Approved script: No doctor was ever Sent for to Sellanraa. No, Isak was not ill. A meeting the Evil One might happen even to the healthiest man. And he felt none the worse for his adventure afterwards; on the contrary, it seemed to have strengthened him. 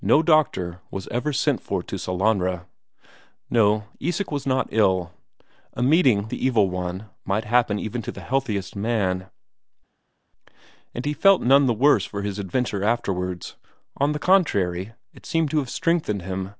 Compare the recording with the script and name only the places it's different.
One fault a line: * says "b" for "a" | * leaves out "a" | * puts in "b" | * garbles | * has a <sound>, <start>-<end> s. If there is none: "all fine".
all fine